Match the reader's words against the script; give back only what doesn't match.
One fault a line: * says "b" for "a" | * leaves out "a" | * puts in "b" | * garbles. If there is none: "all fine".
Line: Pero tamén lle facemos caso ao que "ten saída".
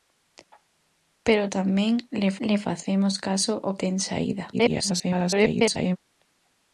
* puts in "lle"
* leaves out "que"
* garbles